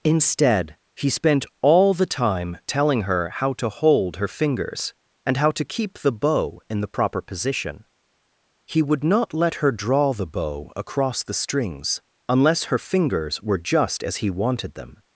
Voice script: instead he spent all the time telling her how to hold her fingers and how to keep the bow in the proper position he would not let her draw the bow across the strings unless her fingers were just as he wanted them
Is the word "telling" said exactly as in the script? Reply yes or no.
yes